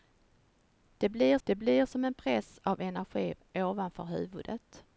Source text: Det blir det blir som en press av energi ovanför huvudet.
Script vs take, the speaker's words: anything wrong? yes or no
no